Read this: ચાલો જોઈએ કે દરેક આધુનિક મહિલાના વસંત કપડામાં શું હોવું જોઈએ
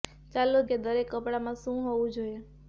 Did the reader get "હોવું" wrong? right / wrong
right